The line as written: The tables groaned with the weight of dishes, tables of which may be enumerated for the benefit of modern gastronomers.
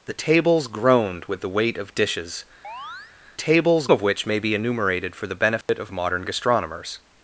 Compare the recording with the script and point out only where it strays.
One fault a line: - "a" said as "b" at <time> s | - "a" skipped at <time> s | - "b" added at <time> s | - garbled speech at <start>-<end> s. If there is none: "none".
none